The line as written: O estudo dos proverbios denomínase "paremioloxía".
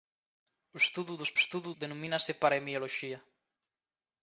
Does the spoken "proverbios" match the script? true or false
false